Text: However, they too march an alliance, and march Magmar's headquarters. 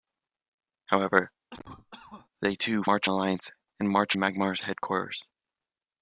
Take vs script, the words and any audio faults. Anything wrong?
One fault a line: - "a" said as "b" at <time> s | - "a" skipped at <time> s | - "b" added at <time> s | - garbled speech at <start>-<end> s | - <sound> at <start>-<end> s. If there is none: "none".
- cough at 1.5-2.3 s